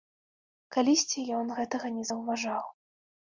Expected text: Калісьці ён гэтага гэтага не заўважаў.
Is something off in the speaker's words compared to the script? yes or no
yes